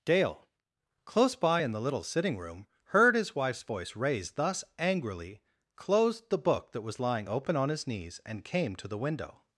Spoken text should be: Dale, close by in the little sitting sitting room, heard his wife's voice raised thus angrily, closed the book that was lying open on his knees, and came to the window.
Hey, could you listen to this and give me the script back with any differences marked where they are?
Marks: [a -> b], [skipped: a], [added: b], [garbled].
Dale, close by in the little sitting [skipped: sitting] room, heard his wife's voice raised thus angrily, closed the book that was lying open on his knees, and came to the window.